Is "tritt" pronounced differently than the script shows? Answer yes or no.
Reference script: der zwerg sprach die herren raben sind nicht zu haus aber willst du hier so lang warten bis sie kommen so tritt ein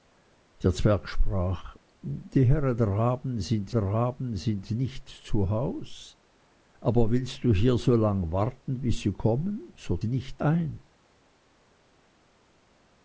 yes